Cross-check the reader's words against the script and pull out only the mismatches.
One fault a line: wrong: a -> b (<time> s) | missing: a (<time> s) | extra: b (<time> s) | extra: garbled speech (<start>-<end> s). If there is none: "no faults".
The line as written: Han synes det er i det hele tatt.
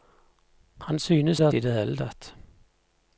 no faults